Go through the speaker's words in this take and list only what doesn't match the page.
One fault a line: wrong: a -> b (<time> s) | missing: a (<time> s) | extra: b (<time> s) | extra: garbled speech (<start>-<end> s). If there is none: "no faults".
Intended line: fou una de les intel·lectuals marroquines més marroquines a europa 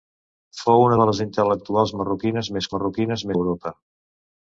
no faults